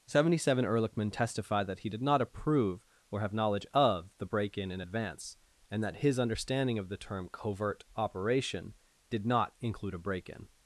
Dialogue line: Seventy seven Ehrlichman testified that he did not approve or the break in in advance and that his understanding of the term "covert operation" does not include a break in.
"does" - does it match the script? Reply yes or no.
no